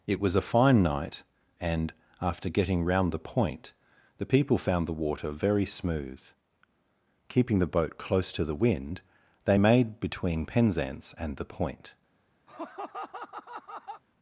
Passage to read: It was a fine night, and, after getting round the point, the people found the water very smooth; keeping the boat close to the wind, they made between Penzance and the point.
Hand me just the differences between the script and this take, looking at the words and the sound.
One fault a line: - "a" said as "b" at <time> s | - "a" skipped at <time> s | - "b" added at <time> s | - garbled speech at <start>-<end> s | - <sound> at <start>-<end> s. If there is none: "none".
- laugh at 12.5-14.0 s